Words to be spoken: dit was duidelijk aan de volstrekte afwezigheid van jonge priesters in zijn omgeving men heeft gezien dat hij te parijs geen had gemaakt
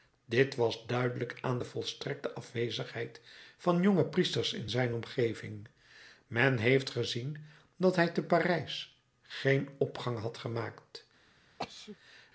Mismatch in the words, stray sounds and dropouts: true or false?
true